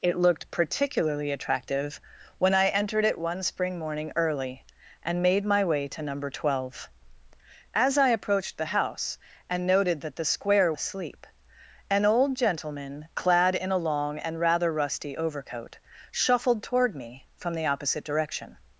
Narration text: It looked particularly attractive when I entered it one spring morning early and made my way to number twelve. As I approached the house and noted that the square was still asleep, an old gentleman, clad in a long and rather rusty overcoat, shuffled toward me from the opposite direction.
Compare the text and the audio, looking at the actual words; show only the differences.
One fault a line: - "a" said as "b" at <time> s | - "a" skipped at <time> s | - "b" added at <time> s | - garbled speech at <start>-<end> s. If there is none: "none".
- "was still" skipped at 10.7 s